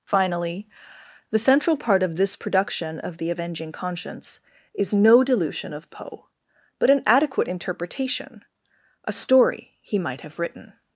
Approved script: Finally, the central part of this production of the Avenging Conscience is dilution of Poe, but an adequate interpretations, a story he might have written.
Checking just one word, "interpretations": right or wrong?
wrong